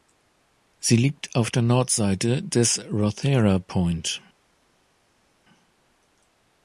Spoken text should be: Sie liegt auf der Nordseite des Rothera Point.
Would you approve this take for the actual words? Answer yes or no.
yes